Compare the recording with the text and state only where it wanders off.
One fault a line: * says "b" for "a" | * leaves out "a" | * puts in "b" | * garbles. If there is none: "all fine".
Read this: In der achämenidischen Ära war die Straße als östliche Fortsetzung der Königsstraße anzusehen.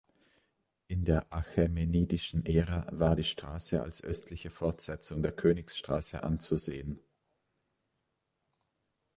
all fine